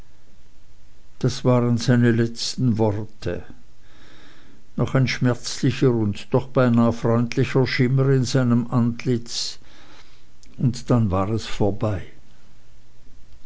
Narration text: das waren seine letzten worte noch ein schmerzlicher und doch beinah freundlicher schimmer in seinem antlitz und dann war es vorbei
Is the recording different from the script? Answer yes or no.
no